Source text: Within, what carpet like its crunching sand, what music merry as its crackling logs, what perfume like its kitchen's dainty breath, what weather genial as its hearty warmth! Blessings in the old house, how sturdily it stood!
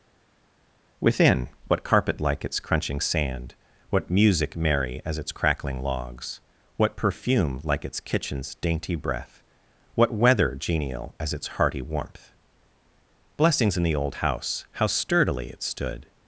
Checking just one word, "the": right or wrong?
right